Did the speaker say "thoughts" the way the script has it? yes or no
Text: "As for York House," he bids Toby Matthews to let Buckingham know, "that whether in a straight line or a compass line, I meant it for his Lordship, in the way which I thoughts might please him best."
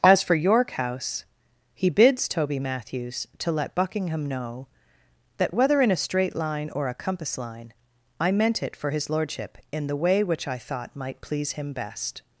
no